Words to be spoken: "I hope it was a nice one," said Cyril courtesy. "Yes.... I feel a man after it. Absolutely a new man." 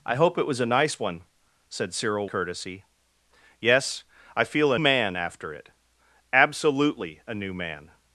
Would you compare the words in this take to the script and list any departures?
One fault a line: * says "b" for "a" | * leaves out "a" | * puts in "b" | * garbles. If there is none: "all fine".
all fine